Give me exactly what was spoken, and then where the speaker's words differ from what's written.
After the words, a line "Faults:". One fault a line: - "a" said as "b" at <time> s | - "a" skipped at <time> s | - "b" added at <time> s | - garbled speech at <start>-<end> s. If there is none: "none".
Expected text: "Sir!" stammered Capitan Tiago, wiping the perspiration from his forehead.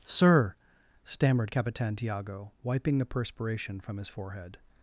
"Sir!" stammered Capitan Tiago, wiping the perspiration from his forehead.
Faults:
none